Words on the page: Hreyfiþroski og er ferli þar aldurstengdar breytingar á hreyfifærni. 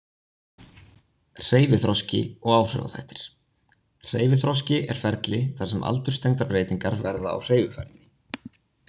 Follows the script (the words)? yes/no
no